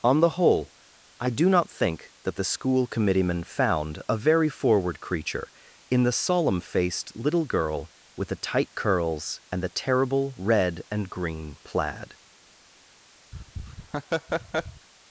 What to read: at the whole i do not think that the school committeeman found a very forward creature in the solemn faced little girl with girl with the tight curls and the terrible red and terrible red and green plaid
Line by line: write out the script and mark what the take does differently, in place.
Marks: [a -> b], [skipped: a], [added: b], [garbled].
[at -> on] the whole i do not think that the school committeeman found a very forward creature in the solemn faced little girl with [skipped: girl with] the tight curls and the terrible red and [skipped: terrible red and] green plaid